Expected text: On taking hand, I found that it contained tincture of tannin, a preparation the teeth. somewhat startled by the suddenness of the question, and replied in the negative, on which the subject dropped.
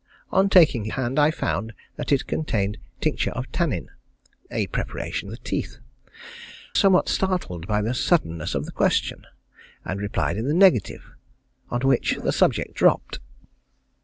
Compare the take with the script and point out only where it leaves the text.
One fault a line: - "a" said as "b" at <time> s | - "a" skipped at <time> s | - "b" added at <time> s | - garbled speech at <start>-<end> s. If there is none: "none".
none